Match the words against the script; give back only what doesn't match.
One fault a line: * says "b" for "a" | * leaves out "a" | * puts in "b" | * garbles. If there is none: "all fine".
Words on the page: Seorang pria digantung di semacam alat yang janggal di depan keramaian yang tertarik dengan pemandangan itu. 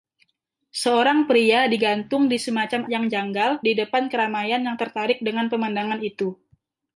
* leaves out "alat"